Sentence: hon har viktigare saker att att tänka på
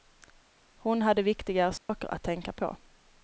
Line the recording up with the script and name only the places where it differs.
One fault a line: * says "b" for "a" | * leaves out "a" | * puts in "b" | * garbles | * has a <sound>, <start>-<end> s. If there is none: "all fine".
* says "hade" for "har"
* has a dropout, 1.8-1.9 s
* leaves out "att"